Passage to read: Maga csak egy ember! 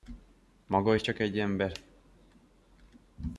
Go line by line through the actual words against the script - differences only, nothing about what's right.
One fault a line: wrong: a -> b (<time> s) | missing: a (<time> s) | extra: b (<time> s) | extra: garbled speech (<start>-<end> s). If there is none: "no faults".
extra: is (0.9 s)